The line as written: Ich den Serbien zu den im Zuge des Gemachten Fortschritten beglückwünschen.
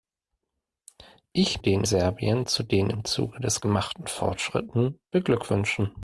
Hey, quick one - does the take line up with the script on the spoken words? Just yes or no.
yes